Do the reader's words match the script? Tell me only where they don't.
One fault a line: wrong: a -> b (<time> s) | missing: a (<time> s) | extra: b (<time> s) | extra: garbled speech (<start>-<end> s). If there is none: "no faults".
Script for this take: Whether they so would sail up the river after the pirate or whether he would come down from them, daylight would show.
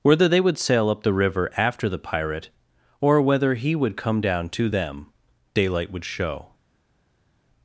missing: so (0.4 s)
wrong: from -> to (4.5 s)